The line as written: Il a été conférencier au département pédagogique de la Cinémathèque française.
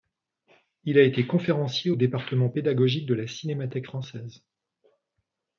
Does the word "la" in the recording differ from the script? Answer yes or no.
no